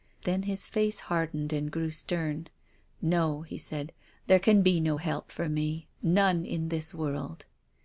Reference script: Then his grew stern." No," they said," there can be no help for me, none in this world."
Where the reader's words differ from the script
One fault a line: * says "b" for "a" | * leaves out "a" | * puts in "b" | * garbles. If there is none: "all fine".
* puts in "face hardened and"
* says "he" for "they"